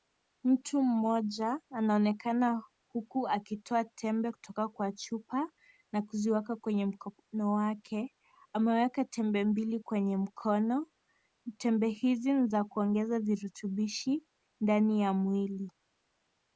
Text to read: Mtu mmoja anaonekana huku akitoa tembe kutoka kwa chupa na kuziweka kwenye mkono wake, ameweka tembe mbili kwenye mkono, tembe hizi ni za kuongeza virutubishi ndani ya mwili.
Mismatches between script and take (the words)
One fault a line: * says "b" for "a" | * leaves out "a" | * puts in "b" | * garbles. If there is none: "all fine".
all fine